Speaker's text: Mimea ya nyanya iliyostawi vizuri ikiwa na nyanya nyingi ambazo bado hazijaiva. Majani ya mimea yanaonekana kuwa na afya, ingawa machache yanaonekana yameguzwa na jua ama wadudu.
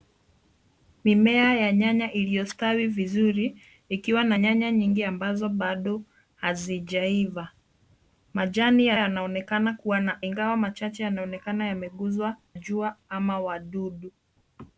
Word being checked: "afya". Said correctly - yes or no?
no